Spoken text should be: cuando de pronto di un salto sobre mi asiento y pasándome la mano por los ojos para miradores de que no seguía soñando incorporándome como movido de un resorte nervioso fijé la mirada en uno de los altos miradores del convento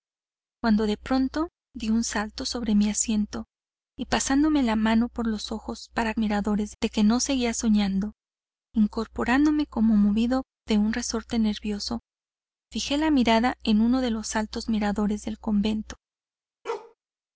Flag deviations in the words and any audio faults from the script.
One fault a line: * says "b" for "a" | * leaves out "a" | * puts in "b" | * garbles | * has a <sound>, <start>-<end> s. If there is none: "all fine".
* has a bark, 16.6-16.9 s